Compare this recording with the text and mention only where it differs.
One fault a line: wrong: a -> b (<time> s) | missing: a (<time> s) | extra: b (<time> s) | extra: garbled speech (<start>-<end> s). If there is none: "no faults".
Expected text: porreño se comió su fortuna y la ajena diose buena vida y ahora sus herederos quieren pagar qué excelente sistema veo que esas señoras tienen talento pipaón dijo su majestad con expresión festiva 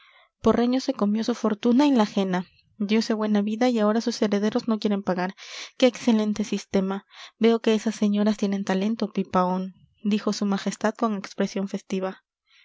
extra: no (4.7 s)